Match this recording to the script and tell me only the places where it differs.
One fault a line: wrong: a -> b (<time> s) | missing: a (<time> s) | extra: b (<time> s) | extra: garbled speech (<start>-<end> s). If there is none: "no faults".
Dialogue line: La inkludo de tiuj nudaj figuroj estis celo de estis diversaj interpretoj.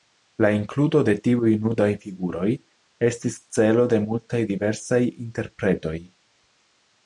wrong: estis -> multaj (4.1 s)